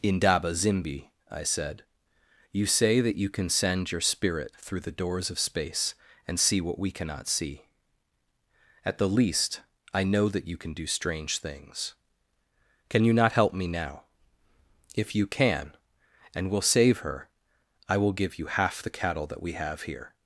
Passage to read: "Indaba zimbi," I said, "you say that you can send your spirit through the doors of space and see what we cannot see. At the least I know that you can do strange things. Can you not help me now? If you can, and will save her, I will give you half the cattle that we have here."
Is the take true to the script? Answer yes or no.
yes